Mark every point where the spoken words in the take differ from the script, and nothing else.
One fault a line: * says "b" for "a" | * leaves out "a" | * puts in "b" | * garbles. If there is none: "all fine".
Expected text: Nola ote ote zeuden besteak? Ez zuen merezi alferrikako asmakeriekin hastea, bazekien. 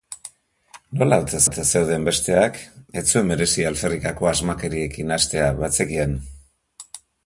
all fine